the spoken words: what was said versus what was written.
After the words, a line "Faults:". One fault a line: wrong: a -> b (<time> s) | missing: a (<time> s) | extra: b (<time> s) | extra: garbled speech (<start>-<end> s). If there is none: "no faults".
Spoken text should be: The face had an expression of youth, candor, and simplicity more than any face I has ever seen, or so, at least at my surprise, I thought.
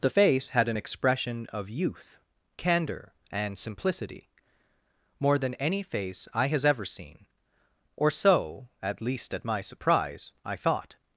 The face had an expression of youth, candor, and simplicity more than any face I has ever seen, or so, at least at my surprise, I thought.
Faults:
no faults